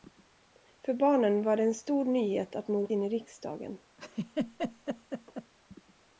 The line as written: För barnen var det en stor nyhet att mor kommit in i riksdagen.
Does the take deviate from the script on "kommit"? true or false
true